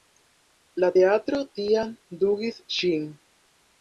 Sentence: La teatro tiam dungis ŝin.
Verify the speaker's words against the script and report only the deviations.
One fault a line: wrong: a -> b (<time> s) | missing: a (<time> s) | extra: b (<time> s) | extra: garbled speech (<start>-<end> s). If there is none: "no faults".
no faults